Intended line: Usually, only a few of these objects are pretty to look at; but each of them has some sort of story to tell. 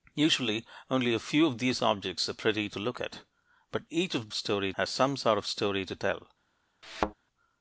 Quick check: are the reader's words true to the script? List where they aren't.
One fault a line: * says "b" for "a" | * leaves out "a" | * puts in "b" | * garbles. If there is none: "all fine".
* says "story" for "them"